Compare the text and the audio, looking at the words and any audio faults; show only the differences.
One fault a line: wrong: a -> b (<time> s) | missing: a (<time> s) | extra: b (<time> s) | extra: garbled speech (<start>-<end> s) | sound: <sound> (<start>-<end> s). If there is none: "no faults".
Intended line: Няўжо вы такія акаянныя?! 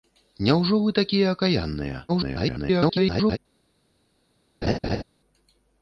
extra: garbled speech (2.1-3.4 s)
sound: laugh (4.6-5.0 s)